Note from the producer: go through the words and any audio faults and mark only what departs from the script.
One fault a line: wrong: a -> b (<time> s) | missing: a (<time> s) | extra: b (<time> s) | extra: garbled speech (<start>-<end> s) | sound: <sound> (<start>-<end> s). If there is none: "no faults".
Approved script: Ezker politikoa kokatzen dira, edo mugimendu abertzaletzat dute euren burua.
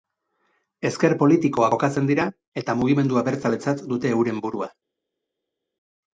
wrong: edo -> eta (2.6 s)